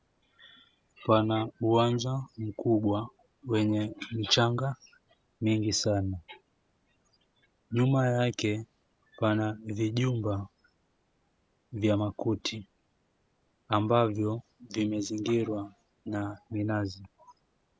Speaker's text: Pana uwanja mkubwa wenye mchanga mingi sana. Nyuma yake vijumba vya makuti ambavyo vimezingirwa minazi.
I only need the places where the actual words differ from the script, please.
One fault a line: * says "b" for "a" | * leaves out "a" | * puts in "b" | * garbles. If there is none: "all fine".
* puts in "pana"
* puts in "na"